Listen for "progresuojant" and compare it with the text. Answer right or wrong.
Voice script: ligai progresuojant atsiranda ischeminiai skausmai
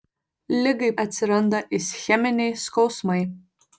wrong